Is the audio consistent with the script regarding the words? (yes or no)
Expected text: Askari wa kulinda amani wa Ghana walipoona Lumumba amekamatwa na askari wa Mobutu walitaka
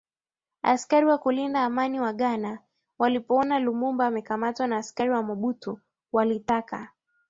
yes